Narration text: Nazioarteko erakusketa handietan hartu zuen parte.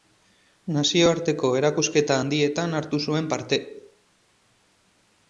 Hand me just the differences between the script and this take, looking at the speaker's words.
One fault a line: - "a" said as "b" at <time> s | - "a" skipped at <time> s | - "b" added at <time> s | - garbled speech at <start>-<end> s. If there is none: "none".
none